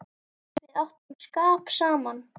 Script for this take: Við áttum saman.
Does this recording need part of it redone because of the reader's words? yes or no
yes